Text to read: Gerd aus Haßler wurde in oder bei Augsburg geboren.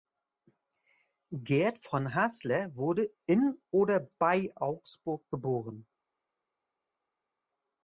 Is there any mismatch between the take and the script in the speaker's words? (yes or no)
yes